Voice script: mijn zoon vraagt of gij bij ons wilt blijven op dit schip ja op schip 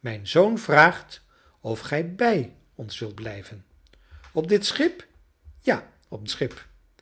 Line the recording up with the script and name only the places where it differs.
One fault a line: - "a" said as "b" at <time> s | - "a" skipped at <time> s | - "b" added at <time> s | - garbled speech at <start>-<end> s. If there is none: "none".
none